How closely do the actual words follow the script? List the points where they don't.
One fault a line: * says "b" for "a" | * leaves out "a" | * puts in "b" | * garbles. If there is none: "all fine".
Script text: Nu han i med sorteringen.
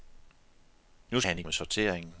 all fine